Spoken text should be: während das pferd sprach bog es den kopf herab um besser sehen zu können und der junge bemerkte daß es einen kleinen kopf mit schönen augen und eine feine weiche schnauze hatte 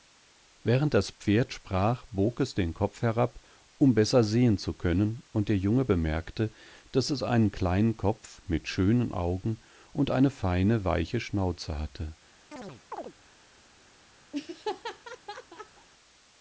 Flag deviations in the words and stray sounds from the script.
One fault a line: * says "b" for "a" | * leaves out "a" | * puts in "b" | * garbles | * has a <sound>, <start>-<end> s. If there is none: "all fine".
* has a chirp, 12.5-13.1 s
* has a laugh, 14.3-15.9 s